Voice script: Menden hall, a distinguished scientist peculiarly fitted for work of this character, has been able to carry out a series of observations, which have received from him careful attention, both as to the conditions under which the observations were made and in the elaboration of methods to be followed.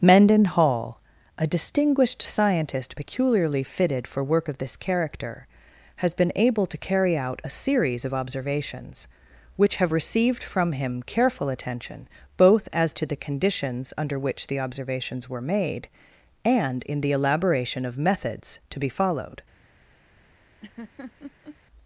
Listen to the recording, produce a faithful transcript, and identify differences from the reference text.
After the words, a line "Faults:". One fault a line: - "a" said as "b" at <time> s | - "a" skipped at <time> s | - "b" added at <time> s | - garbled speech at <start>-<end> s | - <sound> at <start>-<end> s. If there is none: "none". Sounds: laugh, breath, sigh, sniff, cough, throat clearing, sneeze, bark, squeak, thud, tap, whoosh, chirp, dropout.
Menden hall, a distinguished scientist peculiarly fitted for work of this character, has been able to carry out a series of observations, which have received from him careful attention, both as to the conditions under which the observations were made and in the elaboration of methods to be followed.
Faults:
- laugh at 20.6-21.6 s